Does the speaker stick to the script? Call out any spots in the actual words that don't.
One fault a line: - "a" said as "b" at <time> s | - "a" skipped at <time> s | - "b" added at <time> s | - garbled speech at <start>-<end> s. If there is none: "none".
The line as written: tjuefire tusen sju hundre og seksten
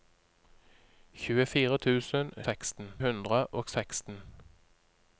- "sju" said as "seksten" at 2.5 s